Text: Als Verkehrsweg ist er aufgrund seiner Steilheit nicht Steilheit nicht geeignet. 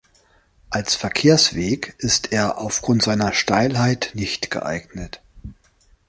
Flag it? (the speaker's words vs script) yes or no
yes